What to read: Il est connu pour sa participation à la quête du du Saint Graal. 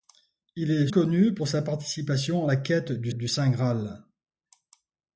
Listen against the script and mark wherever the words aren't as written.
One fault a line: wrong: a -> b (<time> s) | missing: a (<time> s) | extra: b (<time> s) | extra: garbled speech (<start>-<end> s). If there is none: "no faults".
no faults